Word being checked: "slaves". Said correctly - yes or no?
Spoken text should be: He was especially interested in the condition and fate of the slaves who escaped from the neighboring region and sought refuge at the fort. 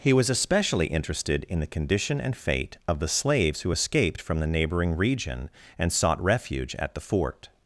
yes